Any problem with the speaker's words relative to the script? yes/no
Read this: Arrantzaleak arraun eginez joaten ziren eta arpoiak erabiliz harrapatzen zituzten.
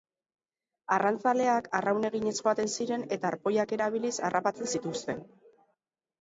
no